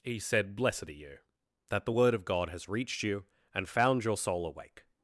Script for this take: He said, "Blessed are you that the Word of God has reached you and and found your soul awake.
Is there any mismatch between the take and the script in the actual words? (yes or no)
yes